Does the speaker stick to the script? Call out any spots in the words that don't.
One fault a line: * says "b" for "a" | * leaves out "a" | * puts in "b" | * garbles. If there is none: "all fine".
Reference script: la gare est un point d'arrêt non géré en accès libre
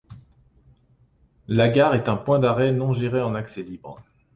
all fine